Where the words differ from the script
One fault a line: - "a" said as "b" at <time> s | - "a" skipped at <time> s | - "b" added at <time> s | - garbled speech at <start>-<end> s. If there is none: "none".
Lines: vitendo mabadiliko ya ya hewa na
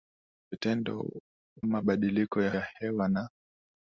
none